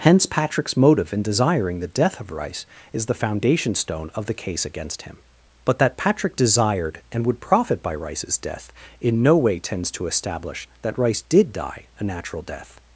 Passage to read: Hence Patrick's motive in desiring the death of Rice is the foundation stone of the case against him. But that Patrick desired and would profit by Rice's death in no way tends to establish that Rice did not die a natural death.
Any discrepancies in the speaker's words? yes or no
yes